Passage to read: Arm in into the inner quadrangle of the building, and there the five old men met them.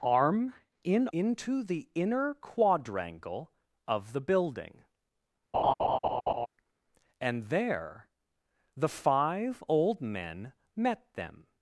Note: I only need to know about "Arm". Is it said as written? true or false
true